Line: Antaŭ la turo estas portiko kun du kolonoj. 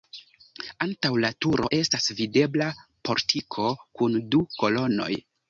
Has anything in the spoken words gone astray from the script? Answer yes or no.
yes